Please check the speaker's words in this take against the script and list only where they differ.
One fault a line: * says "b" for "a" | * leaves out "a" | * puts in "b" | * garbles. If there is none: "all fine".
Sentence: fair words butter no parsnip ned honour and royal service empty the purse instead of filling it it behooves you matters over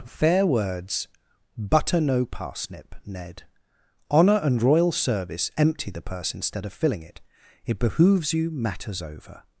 all fine